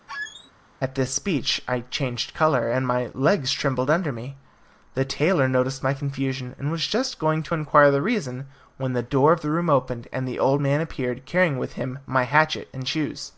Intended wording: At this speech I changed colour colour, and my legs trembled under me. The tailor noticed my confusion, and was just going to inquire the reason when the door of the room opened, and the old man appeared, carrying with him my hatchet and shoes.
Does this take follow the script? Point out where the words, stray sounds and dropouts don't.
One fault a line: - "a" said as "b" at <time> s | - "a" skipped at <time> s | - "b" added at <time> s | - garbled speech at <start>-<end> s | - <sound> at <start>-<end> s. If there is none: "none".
- squeak at 0.1-0.5 s
- "colour" skipped at 2.7 s